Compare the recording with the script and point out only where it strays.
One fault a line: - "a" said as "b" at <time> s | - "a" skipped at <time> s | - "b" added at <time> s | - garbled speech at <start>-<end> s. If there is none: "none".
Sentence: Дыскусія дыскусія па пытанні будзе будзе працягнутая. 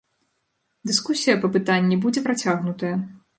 - "дыскусія" skipped at 1.4 s
- "будзе" skipped at 2.2 s